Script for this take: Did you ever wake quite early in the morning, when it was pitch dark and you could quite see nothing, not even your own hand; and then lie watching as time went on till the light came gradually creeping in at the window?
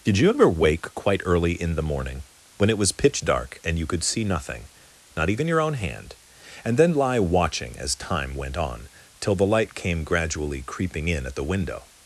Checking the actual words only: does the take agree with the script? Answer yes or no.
no